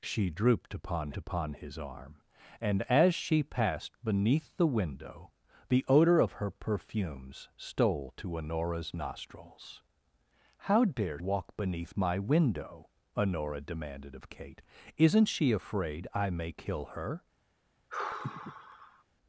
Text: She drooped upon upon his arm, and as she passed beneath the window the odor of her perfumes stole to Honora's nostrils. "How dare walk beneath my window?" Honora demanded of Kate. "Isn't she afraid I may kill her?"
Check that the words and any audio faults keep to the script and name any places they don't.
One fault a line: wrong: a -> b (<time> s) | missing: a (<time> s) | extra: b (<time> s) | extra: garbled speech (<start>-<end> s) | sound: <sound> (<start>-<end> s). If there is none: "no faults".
sound: sigh (17.9-19.0 s)